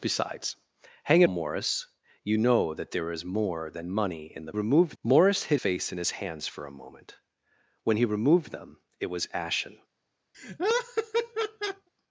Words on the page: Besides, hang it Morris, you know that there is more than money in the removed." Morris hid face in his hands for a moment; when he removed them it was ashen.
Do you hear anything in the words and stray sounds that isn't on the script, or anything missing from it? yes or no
yes